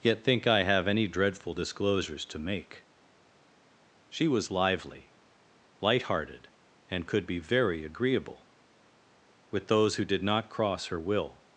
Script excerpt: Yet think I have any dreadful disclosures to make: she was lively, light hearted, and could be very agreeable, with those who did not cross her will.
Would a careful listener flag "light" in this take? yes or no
no